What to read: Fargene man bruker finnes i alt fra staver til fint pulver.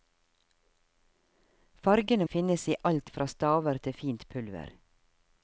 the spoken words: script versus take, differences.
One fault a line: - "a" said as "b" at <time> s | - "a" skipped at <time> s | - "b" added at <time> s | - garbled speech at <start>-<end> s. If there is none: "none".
- "man bruker" skipped at 2.2 s